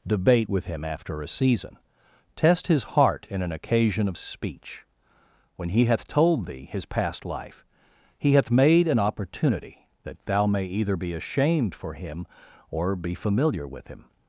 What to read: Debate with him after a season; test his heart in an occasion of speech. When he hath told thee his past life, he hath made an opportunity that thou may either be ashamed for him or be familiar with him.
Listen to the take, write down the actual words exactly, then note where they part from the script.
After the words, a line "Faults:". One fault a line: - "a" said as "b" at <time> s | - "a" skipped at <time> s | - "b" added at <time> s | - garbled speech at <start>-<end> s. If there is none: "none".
Debate with him after a season; test his heart in an occasion of speech. When he hath told thee his past life, he hath made an opportunity that thou may either be ashamed for him or be familiar with him.
Faults:
none